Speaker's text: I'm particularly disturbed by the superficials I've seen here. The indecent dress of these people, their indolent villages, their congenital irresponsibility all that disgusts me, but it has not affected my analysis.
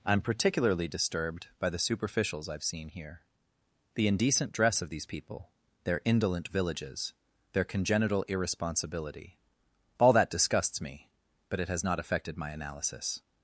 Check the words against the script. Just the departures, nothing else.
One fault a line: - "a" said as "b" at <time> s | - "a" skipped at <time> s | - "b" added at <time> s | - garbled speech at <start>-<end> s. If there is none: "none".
none